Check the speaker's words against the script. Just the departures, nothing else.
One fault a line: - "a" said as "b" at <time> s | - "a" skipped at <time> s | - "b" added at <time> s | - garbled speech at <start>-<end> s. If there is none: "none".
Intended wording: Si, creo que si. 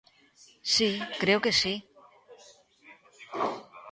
none